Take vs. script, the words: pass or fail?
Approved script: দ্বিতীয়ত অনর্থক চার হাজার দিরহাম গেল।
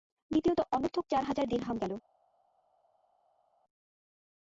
pass